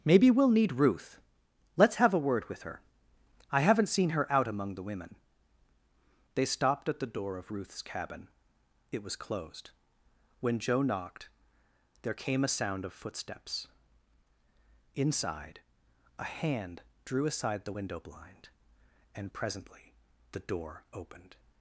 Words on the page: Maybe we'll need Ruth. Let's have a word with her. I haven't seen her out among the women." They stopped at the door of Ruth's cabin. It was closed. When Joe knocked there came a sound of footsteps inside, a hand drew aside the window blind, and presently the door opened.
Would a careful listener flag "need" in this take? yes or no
no